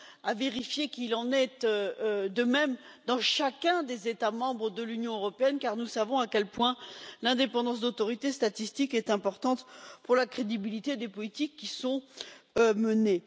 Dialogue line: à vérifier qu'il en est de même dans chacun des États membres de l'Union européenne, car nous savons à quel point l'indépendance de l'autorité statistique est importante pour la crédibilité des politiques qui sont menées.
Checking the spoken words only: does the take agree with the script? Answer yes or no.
yes